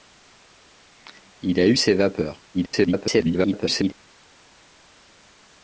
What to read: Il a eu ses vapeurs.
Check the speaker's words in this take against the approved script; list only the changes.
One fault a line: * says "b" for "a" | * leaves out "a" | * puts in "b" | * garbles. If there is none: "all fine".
* garbles